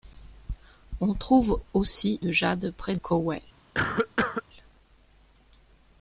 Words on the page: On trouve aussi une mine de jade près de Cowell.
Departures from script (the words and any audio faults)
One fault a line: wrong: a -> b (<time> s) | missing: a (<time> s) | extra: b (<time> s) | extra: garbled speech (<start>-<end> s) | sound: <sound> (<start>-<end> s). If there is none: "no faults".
missing: une mine (2.2 s)
missing: de (3.0 s)
sound: cough (3.7-4.4 s)